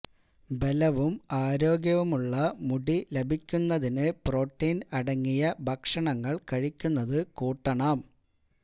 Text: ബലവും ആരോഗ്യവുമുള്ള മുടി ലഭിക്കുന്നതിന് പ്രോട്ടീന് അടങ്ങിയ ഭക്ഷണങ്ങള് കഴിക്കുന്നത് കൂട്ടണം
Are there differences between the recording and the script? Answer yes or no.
no